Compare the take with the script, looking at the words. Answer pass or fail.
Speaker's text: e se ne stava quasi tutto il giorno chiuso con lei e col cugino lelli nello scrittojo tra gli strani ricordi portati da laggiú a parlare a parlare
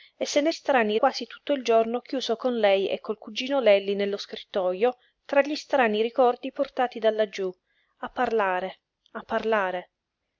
fail